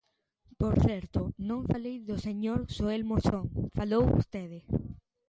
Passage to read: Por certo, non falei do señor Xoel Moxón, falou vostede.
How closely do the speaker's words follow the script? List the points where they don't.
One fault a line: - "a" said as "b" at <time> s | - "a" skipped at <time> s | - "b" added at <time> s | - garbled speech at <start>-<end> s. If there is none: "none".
none